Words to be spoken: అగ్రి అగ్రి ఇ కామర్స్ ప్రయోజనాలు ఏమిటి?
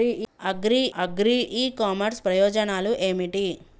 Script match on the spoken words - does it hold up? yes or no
yes